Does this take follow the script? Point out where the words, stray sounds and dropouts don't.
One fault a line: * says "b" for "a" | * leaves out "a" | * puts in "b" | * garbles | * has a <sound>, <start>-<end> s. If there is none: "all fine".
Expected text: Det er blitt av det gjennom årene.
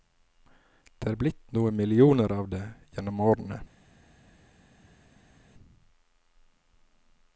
* puts in "noen millioner"